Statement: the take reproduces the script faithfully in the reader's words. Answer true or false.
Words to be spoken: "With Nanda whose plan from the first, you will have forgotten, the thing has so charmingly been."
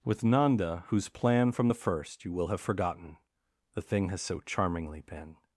true